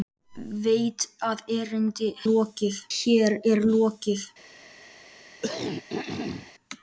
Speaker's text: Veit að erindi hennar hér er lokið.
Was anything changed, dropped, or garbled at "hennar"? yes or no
yes